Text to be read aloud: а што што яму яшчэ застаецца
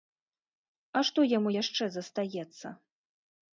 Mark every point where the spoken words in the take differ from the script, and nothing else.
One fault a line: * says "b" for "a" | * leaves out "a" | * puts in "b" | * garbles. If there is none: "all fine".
* leaves out "што"